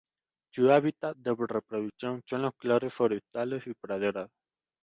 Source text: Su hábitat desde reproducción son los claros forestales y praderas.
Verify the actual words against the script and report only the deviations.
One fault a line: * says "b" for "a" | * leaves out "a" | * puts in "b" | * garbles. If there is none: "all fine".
* says "de" for "desde"